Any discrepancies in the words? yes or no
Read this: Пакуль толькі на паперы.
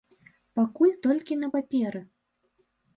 no